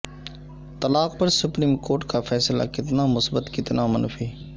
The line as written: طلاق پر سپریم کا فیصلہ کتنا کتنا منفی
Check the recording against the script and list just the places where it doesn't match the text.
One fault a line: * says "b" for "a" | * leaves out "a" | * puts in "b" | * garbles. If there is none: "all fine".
* puts in "کورٹ"
* puts in "مثبت"